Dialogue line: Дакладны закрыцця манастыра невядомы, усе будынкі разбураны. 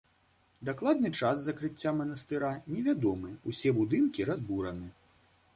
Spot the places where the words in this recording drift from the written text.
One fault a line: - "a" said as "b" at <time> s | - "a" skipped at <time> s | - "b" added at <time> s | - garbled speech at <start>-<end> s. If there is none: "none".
- "час" added at 1.2 s